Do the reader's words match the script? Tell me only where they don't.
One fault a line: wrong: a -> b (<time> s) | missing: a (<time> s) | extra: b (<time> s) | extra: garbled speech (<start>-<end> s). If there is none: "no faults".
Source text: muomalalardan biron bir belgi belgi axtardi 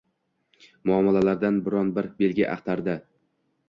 missing: belgi (2.5 s)